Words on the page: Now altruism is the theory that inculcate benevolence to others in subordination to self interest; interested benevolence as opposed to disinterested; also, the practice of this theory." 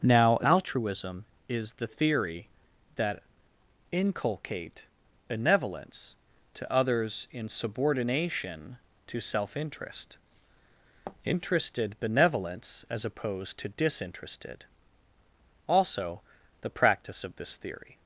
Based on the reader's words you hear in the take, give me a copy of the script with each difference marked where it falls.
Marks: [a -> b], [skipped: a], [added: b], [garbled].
Now altruism is the theory that inculcate benevolence to others in subordination to self interest; interested benevolence as opposed to disinterested; also, the practice of this theory."